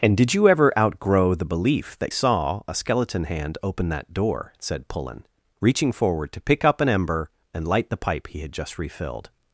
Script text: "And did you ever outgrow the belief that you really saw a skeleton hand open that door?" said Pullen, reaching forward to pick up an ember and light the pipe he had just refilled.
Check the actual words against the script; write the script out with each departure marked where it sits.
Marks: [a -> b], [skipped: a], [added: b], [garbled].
"And did you ever outgrow the belief that [skipped: you really] saw a skeleton hand open that door?" said Pullen, reaching forward to pick up an ember and light the pipe he had just refilled.